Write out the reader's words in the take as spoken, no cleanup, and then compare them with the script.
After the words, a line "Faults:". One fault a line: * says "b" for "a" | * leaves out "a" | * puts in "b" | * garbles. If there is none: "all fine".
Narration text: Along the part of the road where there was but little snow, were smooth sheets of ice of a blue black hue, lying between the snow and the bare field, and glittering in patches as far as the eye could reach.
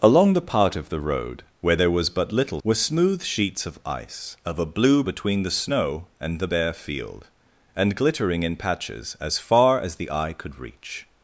Along the part of the road where there was but little were smooth sheets of ice of a blue between the snow and the bare field, and glittering in patches as far as the eye could reach.
Faults:
* leaves out "snow"
* leaves out "black hue lying"